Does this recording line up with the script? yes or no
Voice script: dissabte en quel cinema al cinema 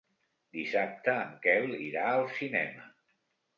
no